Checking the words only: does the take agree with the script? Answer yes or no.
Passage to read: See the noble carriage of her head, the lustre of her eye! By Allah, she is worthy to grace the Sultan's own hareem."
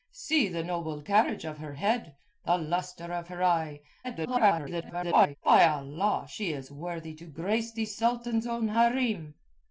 no